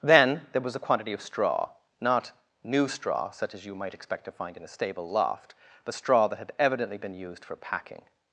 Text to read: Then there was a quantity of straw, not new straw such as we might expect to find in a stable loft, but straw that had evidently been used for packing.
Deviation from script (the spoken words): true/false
true